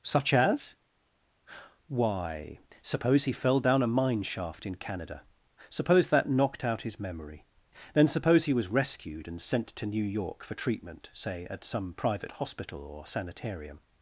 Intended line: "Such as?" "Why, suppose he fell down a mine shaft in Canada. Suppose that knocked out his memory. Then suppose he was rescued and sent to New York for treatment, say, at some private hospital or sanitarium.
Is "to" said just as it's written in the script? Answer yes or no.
yes